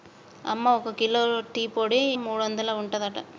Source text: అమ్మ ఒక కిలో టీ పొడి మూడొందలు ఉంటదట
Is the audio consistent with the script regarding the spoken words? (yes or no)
yes